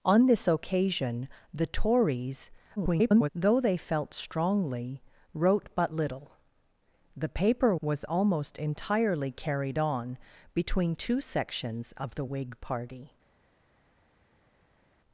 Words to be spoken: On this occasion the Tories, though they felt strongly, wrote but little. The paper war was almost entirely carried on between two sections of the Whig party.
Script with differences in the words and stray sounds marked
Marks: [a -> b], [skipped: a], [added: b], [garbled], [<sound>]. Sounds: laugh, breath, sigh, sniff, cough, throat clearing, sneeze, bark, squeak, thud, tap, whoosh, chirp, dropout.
On this occasion the Tories, [garbled] though they felt strongly, wrote but little. The paper [skipped: war] was almost entirely carried on between two sections of the Whig party.